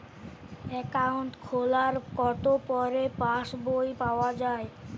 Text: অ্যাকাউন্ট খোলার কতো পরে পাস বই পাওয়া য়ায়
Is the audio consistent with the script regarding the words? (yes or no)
yes